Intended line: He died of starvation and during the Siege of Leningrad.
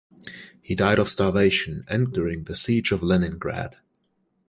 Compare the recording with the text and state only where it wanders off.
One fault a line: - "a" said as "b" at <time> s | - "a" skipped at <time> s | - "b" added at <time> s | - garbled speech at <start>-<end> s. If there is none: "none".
none